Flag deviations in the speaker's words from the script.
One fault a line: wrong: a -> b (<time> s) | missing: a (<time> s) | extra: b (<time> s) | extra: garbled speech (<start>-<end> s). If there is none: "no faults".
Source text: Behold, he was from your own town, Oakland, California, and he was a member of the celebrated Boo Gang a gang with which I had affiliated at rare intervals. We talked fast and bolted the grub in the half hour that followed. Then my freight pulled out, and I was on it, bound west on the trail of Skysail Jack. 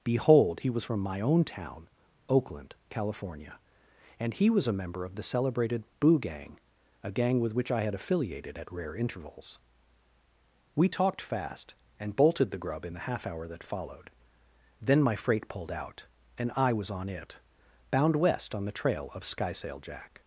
wrong: your -> my (1.0 s)